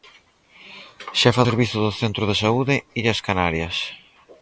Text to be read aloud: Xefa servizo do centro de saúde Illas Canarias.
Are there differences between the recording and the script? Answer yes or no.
no